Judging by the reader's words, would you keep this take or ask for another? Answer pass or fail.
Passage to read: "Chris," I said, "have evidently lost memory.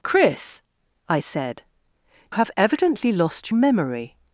pass